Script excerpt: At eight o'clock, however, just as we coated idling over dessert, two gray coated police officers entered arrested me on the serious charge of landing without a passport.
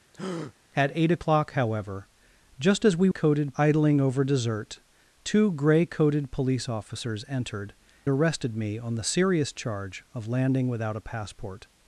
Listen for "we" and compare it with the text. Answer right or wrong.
right